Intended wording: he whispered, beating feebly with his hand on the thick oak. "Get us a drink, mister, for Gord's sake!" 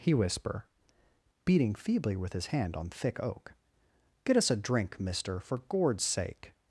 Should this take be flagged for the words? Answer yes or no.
yes